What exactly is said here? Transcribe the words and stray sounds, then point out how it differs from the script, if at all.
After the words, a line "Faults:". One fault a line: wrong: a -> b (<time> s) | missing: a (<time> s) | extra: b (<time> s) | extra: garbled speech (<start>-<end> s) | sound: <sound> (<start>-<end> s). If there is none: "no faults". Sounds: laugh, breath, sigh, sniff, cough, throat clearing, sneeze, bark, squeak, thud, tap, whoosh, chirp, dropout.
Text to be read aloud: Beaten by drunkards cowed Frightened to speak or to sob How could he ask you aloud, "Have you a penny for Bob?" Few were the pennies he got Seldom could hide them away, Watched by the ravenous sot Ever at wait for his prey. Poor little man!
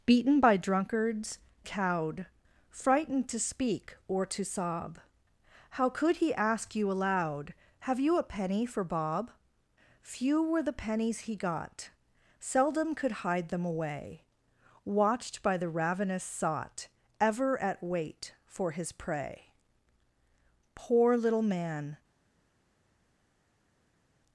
Beaten by drunkards cowed Frightened to speak or to sob How could he ask you aloud, "Have you a penny for Bob?" Few were the pennies he got Seldom could hide them away, Watched by the ravenous sot Ever at wait for his prey. Poor little man!
Faults:
no faults